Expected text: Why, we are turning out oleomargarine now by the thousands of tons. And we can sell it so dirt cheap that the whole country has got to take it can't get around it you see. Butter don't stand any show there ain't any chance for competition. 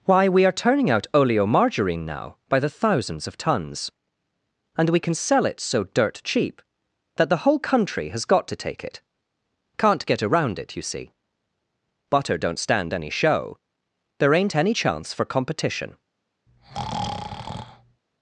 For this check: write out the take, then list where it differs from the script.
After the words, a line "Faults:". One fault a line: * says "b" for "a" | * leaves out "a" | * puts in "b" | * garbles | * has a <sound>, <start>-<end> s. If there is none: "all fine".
Why, we are turning out oleomargarine now by the thousands of tons. And we can sell it so dirt cheap that the whole country has got to take it can't get around it you see. Butter don't stand any show there ain't any chance for competition.
Faults:
* has a breath, 16.5-18.0 s